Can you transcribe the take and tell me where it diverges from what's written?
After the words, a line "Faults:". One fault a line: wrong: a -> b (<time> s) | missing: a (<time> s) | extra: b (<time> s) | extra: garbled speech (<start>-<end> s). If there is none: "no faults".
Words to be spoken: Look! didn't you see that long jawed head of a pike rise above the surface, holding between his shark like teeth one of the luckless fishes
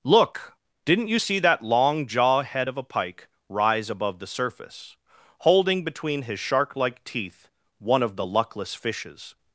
Look! didn't you see that long jaw head of a pike rise above the surface, holding between his shark like teeth one of the luckless fishes
Faults:
wrong: jawed -> jaw (2.1 s)